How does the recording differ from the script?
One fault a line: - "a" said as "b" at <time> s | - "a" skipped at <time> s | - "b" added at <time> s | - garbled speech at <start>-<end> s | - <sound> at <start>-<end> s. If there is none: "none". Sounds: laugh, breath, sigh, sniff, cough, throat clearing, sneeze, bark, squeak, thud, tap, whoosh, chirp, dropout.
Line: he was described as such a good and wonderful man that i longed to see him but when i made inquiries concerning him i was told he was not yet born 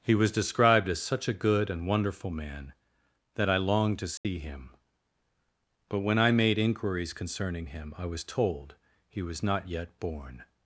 - dropout at 4.2-4.2 s